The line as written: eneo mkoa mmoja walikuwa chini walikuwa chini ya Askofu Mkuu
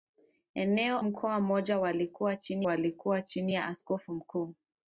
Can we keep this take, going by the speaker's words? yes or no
yes